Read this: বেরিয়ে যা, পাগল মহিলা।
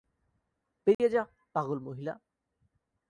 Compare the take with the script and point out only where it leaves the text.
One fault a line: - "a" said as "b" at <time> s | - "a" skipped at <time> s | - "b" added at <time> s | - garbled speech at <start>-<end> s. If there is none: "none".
none